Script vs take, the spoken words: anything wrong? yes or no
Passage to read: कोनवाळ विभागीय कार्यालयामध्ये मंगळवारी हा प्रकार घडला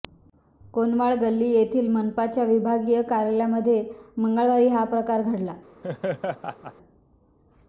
yes